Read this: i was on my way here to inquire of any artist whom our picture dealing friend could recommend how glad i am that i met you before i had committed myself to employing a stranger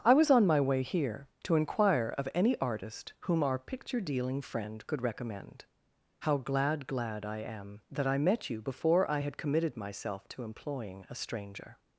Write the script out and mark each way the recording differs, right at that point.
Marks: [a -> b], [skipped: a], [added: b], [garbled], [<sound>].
i was on my way here to inquire of any artist whom our picture dealing friend could recommend how glad [added: glad] i am that i met you before i had committed myself to employing a stranger